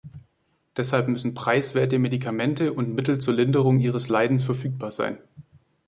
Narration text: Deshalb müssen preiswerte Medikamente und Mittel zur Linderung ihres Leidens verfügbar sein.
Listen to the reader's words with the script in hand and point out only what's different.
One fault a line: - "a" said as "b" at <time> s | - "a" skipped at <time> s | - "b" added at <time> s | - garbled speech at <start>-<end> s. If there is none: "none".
none